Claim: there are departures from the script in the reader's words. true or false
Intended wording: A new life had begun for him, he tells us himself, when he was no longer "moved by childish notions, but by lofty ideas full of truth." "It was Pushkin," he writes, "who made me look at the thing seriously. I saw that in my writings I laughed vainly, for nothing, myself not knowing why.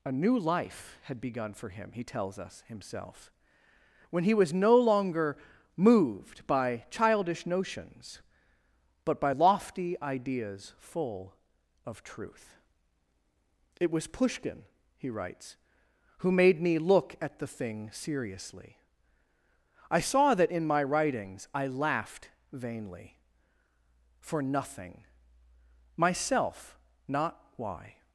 true